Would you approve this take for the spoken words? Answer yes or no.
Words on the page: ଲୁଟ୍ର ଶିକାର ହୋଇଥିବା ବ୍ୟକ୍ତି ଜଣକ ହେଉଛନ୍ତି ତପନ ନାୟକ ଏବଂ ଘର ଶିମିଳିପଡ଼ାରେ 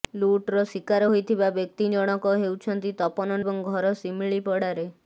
no